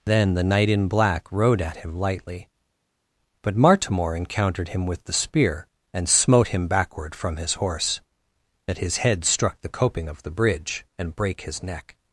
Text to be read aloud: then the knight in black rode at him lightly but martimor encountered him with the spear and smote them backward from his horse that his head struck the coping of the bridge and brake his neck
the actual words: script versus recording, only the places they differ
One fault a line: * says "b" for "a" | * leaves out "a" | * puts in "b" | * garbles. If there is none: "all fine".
* says "him" for "them"